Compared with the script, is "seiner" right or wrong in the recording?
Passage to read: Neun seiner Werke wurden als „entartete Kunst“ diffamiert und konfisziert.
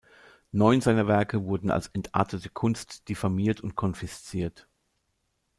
right